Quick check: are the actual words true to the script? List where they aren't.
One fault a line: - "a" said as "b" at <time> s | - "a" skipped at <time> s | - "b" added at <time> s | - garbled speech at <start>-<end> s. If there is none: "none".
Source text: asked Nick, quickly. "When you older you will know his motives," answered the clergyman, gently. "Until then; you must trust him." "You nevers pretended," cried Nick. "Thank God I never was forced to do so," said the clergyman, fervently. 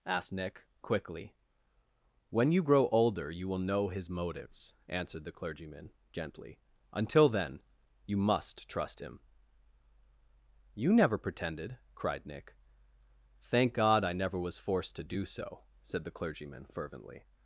- "grow" added at 2.6 s
- "nevers" said as "never" at 10.9 s